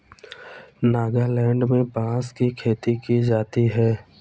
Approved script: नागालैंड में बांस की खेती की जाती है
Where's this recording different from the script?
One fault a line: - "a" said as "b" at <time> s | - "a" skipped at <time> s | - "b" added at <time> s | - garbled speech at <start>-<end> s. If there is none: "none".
none